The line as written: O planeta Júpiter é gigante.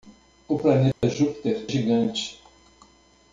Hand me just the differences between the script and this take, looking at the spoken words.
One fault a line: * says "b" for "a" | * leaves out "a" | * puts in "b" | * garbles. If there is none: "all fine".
* leaves out "é"